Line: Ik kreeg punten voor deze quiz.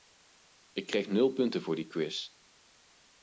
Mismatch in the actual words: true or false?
true